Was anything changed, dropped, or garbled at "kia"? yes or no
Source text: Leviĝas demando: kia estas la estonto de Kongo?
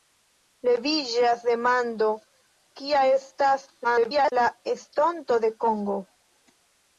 no